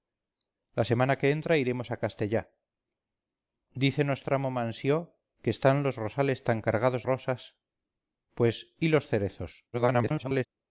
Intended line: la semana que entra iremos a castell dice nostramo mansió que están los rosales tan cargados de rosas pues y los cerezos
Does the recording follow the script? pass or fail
fail